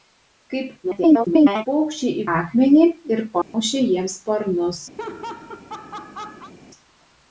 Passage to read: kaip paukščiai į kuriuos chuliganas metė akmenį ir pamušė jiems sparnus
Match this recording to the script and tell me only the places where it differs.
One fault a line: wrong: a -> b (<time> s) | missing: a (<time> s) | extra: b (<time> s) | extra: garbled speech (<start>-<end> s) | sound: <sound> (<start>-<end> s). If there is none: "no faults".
extra: garbled speech (0.8-1.7 s)
missing: kuriuos chuliganas metė (2.2 s)
sound: dropout (3.4-3.5 s)
sound: laugh (5.0-6.5 s)